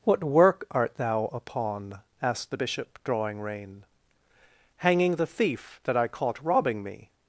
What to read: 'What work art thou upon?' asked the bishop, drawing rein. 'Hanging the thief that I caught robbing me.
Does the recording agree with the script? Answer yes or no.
yes